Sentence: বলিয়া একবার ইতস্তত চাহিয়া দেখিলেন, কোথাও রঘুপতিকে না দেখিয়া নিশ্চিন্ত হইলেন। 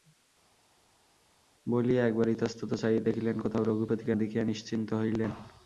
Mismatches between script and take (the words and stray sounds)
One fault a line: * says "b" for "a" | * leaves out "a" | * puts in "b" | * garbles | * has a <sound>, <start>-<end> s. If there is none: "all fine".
* leaves out "না"